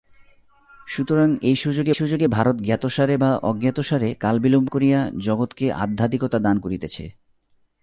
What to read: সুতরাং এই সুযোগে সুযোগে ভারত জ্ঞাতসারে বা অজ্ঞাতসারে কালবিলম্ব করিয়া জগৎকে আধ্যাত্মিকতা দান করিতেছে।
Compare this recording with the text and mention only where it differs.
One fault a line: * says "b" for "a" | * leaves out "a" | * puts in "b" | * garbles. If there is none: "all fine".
all fine